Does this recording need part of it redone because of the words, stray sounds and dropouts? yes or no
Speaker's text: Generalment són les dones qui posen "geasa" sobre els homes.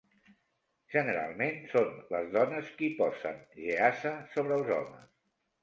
no